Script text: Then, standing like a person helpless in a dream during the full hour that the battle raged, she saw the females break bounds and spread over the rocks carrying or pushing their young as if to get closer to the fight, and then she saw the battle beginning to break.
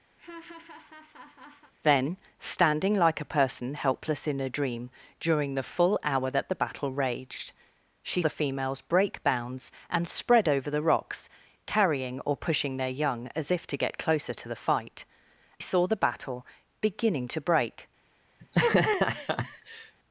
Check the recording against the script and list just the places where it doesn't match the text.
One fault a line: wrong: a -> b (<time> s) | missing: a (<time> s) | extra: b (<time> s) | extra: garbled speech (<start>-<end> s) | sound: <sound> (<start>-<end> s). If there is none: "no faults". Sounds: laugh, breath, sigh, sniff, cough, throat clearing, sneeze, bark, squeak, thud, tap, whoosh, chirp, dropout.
sound: laugh (0.2-1.7 s)
missing: saw (8.2 s)
missing: and then she (15.0 s)
sound: laugh (18.4-19.9 s)